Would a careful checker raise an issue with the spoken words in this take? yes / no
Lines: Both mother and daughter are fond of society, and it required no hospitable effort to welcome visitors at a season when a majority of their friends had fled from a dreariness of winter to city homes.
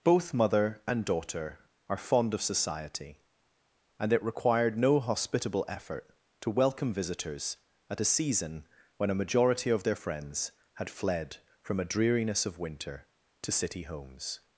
no